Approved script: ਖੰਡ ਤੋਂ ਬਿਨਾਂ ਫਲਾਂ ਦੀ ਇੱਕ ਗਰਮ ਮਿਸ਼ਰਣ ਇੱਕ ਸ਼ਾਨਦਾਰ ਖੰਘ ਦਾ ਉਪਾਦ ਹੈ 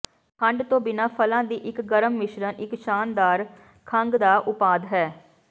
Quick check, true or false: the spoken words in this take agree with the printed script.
true